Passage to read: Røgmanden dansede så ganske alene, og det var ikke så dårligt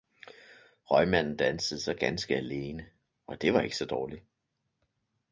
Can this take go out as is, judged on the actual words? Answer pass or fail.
pass